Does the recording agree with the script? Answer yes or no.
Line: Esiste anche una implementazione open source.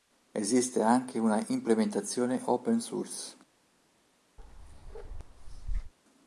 yes